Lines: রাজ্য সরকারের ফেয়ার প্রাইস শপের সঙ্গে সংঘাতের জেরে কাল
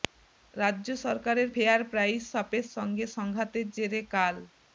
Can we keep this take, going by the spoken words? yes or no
yes